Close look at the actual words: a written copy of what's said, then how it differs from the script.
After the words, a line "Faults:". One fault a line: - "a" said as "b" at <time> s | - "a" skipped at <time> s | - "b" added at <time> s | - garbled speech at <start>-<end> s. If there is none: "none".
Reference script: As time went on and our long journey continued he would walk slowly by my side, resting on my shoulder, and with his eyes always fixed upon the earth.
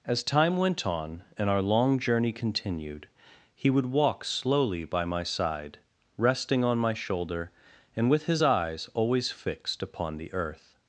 As time went on and our long journey continued he would walk slowly by my side, resting on my shoulder, and with his eyes always fixed upon the earth.
Faults:
none